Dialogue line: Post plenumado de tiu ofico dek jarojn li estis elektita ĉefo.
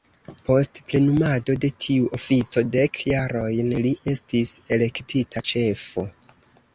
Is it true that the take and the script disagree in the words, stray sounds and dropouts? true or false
false